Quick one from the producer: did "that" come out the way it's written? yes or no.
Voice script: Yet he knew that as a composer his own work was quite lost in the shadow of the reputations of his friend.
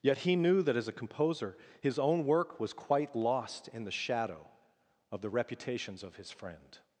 yes